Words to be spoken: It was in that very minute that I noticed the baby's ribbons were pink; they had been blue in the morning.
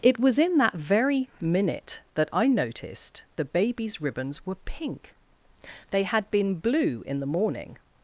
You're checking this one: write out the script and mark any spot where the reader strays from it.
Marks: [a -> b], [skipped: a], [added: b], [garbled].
It was in that very minute that I noticed the baby's ribbons were pink; they had been blue in the morning.